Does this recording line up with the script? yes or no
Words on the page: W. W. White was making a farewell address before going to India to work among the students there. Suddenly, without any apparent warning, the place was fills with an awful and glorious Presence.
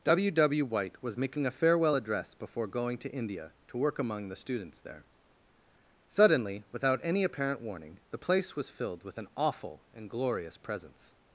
no